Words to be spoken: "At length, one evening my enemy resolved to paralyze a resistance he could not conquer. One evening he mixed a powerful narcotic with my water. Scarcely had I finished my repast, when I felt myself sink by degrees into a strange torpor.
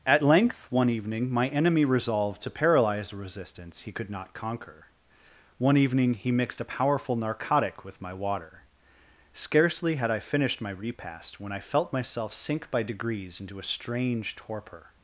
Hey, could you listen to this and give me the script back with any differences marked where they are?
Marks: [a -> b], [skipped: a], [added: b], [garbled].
"At length, one evening my enemy resolved to paralyze a resistance he could not conquer. One evening he mixed a powerful narcotic with my water. Scarcely had I finished my repast, when I felt myself sink by degrees into a strange torpor.